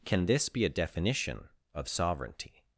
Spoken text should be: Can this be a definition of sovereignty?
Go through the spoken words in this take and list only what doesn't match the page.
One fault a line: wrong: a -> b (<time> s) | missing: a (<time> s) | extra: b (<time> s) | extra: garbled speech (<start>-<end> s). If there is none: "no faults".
no faults